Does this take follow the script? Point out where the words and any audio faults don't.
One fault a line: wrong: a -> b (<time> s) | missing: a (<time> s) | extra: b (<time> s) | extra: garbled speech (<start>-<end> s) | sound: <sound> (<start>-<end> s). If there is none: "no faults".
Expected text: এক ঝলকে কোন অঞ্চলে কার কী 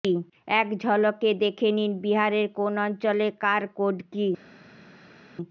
extra: দেখে নিন বিহারের (1.4 s)
extra: কোড (3.8 s)